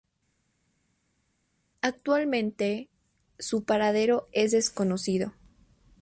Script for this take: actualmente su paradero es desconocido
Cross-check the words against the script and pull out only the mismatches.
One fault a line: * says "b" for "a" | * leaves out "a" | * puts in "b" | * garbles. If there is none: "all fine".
all fine